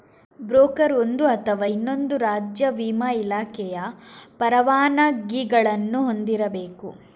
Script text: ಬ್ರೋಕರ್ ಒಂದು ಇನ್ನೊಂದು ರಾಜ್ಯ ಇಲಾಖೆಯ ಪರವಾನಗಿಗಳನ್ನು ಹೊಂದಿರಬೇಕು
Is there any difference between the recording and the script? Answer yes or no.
yes